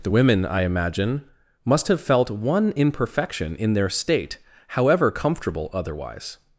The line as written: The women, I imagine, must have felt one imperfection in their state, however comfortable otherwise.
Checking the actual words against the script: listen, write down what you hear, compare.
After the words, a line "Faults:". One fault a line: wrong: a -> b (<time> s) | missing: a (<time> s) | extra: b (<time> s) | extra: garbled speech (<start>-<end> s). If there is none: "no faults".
The women, I imagine, must have felt one imperfection in their state, however comfortable otherwise.
Faults:
no faults